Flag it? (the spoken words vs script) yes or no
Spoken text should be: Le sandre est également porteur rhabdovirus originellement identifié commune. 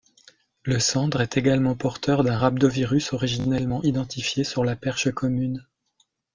yes